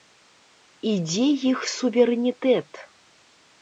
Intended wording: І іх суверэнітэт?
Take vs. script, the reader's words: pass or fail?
fail